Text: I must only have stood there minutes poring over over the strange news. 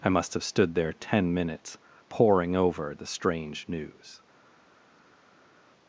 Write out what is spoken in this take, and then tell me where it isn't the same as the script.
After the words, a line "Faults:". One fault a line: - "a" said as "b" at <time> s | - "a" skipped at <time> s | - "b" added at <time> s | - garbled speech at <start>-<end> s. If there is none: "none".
I must have stood there ten minutes poring over the strange news.
Faults:
- "only" skipped at 0.3 s
- "ten" added at 0.9 s
- "over" skipped at 2.9 s